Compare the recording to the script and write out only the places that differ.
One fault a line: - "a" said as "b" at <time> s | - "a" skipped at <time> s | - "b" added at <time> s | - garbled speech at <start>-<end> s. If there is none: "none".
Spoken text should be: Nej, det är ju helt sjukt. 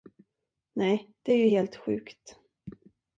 none